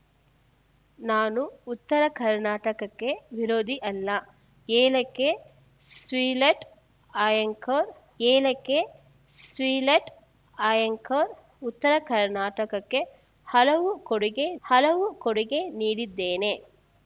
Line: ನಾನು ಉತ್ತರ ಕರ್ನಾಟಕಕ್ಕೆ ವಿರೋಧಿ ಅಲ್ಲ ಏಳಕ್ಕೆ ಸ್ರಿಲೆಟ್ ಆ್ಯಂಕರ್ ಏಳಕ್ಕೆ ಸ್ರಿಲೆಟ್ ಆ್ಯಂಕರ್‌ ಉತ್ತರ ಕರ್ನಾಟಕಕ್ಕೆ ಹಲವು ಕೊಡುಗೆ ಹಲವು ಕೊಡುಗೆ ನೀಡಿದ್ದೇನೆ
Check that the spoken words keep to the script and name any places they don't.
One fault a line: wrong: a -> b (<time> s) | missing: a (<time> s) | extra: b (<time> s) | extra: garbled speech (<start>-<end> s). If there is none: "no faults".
no faults